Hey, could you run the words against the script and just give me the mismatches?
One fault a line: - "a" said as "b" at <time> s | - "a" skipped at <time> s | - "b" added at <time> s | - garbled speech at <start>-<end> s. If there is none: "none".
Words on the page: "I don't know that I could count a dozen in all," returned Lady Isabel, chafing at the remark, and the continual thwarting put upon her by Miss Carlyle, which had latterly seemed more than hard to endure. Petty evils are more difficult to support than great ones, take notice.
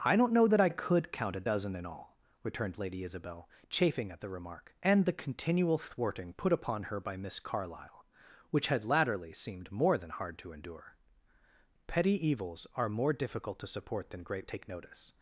- "ones" skipped at 14.5 s